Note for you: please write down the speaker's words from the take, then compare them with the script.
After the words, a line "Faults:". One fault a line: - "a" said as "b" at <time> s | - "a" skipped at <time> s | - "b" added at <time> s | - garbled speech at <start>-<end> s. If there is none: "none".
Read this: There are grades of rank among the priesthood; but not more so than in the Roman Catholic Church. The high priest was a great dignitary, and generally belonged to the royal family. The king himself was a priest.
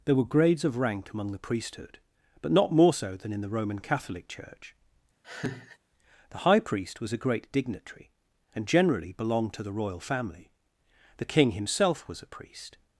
There were grades of rank among the priesthood; but not more so than in the Roman Catholic Church. The high priest was a great dignitary, and generally belonged to the royal family. The king himself was a priest.
Faults:
- "are" said as "were" at 0.1 s